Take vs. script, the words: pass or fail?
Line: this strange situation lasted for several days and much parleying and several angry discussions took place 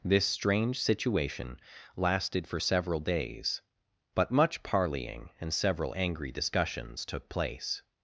fail